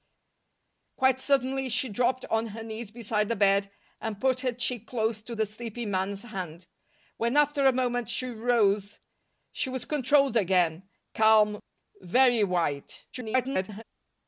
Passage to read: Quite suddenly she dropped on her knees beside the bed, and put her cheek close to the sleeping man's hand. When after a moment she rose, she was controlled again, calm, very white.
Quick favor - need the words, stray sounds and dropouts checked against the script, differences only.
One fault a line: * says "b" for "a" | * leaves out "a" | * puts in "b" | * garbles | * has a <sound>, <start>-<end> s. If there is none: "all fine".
* garbles